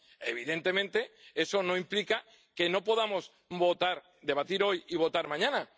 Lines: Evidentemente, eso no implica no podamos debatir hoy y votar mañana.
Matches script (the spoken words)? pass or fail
fail